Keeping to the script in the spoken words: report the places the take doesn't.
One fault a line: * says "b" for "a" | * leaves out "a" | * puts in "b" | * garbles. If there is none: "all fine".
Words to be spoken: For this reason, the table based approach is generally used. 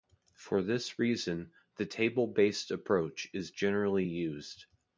all fine